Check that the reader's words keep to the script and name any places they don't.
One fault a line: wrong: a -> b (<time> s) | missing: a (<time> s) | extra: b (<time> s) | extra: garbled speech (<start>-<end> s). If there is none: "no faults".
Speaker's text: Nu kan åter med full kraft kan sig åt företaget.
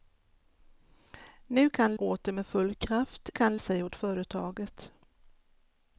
no faults